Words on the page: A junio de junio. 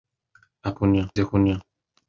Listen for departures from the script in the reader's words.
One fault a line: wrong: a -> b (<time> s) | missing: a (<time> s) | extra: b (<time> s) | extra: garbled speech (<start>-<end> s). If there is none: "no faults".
no faults